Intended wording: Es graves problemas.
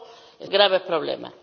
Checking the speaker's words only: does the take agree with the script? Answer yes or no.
yes